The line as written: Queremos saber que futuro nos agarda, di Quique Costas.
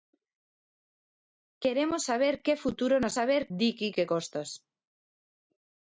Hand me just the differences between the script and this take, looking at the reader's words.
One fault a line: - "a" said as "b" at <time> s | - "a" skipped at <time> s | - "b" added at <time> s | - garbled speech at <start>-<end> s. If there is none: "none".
- "agarda" said as "saber" at 3.2 s